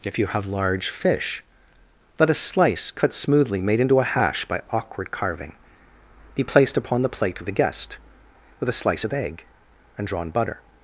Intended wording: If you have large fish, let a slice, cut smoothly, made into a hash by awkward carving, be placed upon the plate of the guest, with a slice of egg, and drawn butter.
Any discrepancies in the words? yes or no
no